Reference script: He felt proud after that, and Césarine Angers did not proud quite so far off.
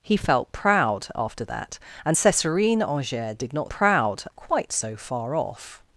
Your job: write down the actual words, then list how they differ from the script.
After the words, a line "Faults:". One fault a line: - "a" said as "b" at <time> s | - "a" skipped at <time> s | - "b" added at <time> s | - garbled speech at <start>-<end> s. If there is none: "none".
He felt proud after that, and Césarine Angers did not proud quite so far off.
Faults:
none